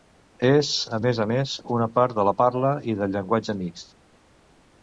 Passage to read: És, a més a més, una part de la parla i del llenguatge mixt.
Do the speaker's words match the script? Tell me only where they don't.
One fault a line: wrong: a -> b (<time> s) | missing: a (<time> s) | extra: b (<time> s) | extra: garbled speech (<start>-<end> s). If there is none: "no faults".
no faults